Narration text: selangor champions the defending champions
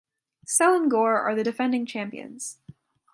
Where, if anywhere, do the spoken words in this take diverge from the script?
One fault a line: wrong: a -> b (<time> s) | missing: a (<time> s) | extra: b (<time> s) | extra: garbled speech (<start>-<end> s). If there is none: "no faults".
wrong: champions -> are (1.2 s)